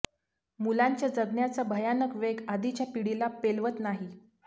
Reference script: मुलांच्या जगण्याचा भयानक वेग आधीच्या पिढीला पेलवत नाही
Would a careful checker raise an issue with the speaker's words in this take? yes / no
no